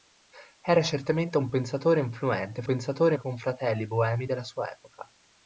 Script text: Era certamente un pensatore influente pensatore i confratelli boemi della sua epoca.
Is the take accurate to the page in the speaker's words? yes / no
yes